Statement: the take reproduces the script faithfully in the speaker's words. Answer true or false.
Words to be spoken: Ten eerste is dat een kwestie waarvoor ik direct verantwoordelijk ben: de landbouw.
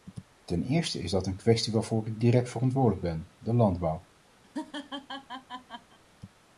true